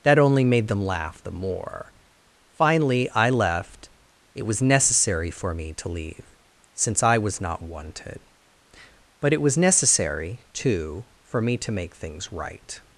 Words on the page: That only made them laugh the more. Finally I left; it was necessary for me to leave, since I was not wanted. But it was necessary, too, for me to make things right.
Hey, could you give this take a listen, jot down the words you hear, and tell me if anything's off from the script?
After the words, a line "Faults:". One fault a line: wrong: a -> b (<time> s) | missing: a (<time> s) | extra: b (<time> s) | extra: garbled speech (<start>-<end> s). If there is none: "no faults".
That only made them laugh the more. Finally I left; it was necessary for me to leave, since I was not wanted. But it was necessary, too, for me to make things right.
Faults:
no faults